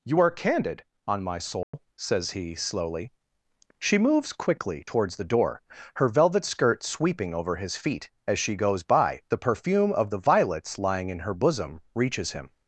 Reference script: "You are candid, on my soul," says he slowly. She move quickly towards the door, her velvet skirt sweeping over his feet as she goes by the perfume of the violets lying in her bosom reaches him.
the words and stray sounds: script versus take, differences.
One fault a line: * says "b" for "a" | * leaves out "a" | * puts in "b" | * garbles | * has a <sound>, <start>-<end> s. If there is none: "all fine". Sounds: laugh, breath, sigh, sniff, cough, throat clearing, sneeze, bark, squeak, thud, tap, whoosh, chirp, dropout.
* has a dropout, 1.6-1.7 s
* says "moves" for "move"